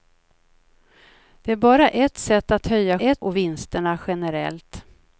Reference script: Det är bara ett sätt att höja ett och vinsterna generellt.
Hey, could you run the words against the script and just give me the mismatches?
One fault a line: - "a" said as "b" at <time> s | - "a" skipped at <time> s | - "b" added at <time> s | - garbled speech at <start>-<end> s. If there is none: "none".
none